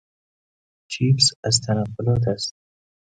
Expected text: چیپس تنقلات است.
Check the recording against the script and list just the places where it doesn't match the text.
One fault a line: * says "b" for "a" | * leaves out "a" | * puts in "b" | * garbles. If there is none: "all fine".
* puts in "از"